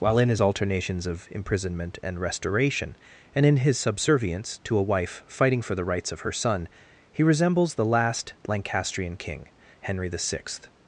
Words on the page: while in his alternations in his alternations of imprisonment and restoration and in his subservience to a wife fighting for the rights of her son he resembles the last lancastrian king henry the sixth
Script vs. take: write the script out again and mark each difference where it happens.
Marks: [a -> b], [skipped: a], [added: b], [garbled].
while in his alternations [skipped: in his alternations] of imprisonment and restoration and in his subservience to a wife fighting for the rights of her son he resembles the last lancastrian king henry the sixth